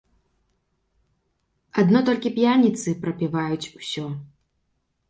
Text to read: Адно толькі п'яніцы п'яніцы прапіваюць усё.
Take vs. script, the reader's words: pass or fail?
fail